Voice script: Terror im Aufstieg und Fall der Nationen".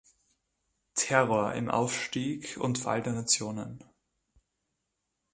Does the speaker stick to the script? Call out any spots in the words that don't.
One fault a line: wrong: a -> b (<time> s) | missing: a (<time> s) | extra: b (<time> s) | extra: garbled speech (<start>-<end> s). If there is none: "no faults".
no faults